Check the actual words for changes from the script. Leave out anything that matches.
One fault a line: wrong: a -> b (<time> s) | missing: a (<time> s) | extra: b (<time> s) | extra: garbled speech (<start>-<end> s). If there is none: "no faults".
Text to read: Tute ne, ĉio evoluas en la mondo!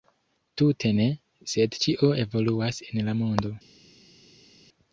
extra: sed (1.5 s)